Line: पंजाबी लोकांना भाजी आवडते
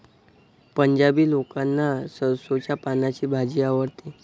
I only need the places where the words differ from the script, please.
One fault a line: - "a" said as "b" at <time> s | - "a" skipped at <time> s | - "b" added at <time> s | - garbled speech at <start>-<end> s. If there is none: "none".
- "सरसोंच्या पानांची" added at 2.1 s